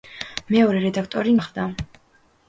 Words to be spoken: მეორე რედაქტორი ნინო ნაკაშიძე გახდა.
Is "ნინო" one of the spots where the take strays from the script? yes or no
yes